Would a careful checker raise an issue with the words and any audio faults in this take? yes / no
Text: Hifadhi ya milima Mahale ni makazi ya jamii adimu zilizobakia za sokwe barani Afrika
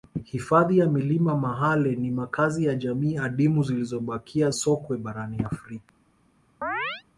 yes